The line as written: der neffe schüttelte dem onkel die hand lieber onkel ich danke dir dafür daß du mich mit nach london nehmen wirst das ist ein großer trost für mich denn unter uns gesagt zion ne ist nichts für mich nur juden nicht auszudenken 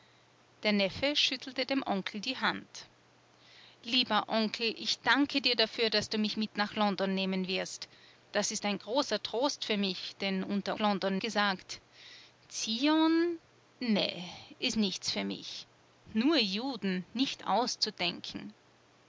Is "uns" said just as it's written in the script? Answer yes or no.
no